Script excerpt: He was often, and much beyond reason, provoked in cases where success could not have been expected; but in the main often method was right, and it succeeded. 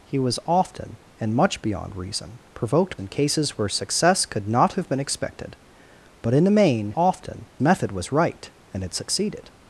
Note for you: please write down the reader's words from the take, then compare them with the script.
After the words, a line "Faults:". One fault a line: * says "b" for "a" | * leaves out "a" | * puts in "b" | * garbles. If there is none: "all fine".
He was often, and much beyond reason, provoked in cases where success could not have been expected; but in the main often method was right, and it succeeded.
Faults:
all fine